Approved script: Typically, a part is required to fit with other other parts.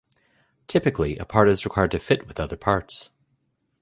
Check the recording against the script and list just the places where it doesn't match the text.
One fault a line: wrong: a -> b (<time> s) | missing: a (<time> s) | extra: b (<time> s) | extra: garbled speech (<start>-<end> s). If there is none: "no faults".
missing: other (2.6 s)